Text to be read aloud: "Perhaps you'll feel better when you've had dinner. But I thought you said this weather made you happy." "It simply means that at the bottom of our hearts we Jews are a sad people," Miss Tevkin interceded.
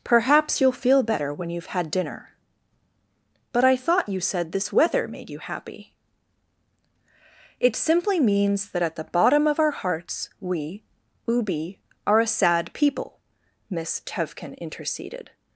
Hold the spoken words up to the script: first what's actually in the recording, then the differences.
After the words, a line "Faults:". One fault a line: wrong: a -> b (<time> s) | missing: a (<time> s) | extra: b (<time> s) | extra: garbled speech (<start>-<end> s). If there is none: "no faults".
"Perhaps you'll feel better when you've had dinner. But I thought you said this weather made you happy." "It simply means that at the bottom of our hearts we Ubi are a sad people," Miss Tevkin interceded.
Faults:
wrong: Jews -> Ubi (11.3 s)